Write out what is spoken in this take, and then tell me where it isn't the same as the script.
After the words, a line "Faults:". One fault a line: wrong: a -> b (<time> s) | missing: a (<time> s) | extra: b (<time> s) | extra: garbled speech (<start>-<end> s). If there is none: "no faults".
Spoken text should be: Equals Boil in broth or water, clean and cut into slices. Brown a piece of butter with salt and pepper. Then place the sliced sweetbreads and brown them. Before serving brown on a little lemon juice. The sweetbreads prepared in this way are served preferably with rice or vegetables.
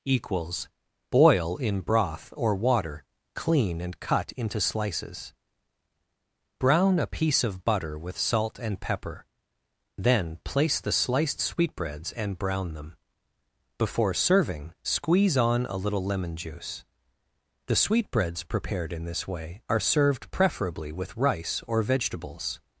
Equals Boil in broth or water, clean and cut into slices. Brown a piece of butter with salt and pepper. Then place the sliced sweetbreads and brown them. Before serving squeeze on a little lemon juice. The sweetbreads prepared in this way are served preferably with rice or vegetables.
Faults:
wrong: brown -> squeeze (14.8 s)